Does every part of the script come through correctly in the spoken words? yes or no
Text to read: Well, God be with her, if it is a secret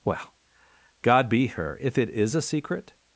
no